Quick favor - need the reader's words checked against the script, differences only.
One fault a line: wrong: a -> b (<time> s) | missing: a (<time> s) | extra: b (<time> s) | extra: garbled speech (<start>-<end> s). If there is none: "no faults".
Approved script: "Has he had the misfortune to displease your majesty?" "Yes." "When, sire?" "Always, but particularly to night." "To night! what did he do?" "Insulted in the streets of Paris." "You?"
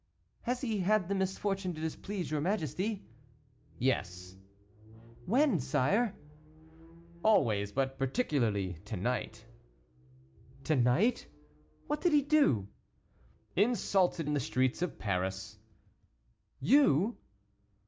no faults